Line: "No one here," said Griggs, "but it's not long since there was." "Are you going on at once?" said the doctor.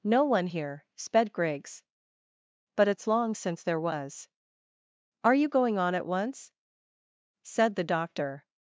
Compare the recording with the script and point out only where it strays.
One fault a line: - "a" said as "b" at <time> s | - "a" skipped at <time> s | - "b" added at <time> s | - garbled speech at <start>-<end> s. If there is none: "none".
- "said" said as "sped" at 0.9 s
- "not" skipped at 3.1 s